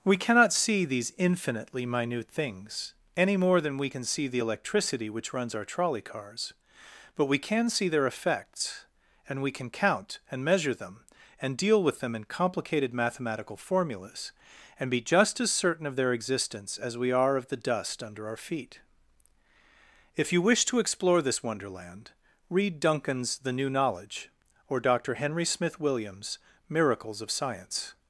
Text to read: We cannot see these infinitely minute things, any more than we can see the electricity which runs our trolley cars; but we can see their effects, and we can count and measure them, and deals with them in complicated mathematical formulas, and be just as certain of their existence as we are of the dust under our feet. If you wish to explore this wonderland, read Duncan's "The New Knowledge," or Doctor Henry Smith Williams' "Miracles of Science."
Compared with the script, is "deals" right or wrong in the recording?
wrong